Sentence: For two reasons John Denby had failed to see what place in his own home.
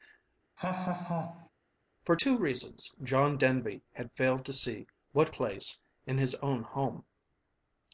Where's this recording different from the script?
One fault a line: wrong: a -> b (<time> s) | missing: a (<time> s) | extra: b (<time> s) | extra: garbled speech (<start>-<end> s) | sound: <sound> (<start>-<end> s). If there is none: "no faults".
sound: laugh (0.6-1.5 s)